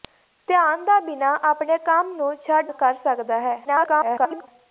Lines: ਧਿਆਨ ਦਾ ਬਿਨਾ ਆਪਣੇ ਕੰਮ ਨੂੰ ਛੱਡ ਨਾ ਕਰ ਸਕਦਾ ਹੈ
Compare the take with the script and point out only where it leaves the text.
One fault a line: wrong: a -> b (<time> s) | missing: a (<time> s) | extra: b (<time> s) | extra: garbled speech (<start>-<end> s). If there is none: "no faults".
missing: ਨਾ (2.7 s)
extra: garbled speech (3.6-4.5 s)